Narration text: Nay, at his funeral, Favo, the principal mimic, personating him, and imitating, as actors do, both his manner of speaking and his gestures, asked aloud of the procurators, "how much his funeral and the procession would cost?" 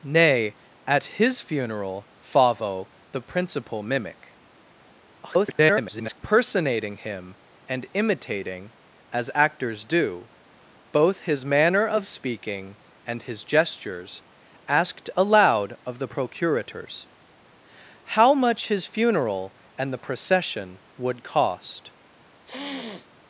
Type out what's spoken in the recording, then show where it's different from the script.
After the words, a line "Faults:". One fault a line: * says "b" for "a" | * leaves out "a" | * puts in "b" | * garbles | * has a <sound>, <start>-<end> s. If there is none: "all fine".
Nay, at his funeral, Favo, the principal mimic, [garbled] personating him, and imitating, as actors do, both his manner of speaking and his gestures, asked aloud of the procurators, "how much his funeral and the procession would cost?"
Faults:
* garbles
* has a sniff, 22.4-23.1 s